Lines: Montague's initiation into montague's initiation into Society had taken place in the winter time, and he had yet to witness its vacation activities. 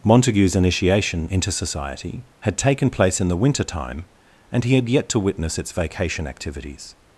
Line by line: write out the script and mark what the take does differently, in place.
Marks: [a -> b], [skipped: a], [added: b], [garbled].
Montague's initiation into [skipped: montague's initiation into] Society had taken place in the winter time, and he had yet to witness its vacation activities.